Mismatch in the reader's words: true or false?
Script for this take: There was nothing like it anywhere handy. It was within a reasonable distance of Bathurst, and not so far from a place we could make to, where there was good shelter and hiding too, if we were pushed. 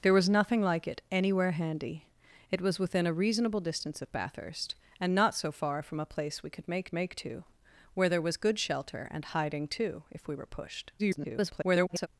true